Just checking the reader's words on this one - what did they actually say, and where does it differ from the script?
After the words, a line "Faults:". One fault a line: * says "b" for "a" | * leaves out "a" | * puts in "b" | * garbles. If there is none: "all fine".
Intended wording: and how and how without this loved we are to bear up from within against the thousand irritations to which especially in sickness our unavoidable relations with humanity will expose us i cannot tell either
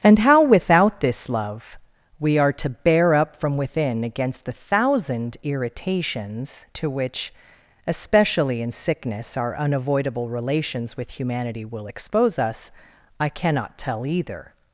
and how without this love we are to bear up from within against the thousand irritations to which especially in sickness our unavoidable relations with humanity will expose us i cannot tell either
Faults:
* leaves out "and how"
* says "love" for "loved"